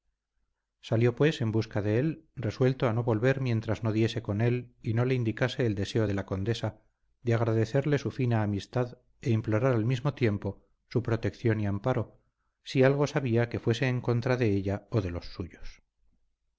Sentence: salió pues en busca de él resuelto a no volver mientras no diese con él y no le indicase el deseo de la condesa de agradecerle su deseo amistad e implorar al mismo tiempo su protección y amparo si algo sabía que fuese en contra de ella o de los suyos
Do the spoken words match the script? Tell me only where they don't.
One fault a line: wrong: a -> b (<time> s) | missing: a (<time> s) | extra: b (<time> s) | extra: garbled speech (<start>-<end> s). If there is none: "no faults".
wrong: deseo -> fina (8.1 s)